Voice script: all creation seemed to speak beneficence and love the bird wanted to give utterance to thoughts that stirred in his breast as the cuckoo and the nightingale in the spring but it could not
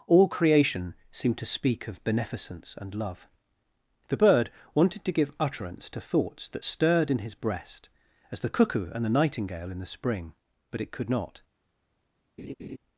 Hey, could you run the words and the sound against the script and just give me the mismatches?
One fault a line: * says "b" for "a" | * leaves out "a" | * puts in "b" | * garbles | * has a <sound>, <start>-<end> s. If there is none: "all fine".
* puts in "of"
* has a laugh, 12.4-12.8 s